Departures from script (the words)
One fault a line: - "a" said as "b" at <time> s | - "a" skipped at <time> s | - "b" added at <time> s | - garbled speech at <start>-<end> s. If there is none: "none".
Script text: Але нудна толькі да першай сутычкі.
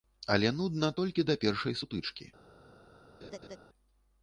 none